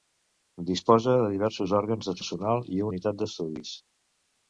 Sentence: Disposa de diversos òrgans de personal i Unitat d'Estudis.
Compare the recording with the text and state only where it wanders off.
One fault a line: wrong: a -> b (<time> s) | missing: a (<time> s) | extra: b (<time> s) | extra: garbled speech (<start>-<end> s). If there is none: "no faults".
no faults